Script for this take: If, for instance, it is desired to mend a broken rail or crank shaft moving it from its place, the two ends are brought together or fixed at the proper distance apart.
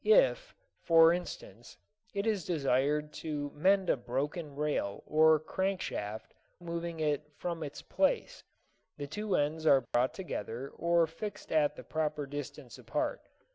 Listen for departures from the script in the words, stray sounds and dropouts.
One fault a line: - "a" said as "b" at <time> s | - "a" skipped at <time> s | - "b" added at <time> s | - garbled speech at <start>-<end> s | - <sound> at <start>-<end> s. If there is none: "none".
- dropout at 9.9-9.9 s